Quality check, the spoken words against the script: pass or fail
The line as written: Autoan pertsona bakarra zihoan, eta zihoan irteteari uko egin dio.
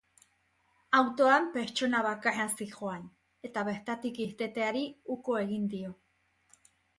fail